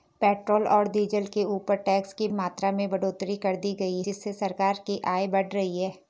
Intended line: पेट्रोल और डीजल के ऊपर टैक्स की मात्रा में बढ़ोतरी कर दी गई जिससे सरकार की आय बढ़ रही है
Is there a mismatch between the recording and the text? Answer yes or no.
no